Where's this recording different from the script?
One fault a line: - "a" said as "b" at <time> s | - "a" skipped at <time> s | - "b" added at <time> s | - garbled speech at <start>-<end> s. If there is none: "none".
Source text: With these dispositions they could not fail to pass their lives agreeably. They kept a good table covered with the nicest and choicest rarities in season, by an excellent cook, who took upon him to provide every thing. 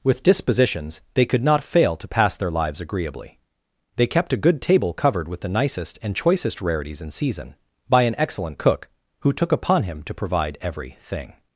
- "these" skipped at 0.2 s